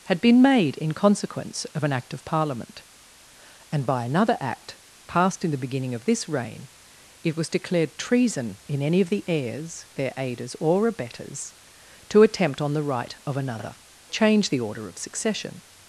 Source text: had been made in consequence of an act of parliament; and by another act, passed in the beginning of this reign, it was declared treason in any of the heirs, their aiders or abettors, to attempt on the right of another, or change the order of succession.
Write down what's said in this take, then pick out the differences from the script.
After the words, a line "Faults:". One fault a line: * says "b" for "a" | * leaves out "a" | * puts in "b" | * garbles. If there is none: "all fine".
had been made in consequence of an act of parliament; and by another act, passed in the beginning of this reign, it was declared treason in any of the heirs, their aiders or abettors, to attempt on the right of another, change the order of succession.
Faults:
* leaves out "or"